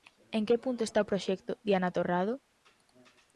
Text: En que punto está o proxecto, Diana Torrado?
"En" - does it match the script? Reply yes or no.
yes